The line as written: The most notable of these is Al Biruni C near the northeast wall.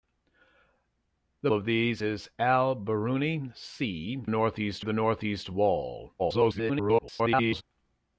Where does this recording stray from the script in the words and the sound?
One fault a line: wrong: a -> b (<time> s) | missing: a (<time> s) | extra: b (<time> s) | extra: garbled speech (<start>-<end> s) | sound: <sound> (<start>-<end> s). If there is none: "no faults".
missing: most notable (1.5 s)
wrong: near -> northeast (4.3 s)
extra: garbled speech (6.2-7.6 s)